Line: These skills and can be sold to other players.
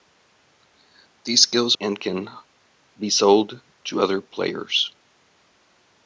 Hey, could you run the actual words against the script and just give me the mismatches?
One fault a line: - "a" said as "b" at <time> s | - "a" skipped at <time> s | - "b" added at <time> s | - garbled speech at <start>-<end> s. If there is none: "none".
none